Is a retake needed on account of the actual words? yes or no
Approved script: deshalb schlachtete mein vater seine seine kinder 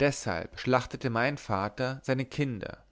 yes